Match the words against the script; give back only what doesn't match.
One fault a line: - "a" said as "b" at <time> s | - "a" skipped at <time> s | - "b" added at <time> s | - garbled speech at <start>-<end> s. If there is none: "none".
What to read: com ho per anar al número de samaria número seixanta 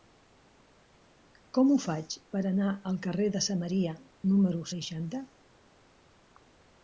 - "faig" added at 1.8 s
- "número" said as "carrer" at 3.1 s